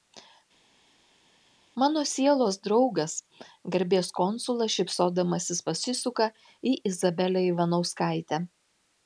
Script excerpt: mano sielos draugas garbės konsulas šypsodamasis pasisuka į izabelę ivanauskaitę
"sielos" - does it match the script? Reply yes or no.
yes